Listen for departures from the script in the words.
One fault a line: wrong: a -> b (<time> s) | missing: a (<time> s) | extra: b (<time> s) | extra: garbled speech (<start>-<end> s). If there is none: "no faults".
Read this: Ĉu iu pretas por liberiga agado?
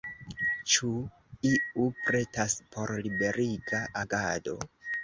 no faults